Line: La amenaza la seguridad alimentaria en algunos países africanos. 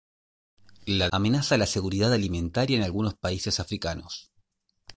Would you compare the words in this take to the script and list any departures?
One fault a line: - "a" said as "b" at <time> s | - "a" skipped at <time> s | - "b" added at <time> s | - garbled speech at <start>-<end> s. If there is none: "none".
none